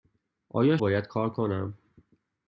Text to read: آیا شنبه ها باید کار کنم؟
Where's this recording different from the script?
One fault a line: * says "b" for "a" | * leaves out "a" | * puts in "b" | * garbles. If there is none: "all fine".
* leaves out "شنبه ها"